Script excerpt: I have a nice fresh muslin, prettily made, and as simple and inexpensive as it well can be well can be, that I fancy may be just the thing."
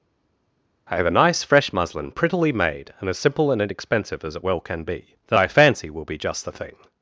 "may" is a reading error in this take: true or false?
true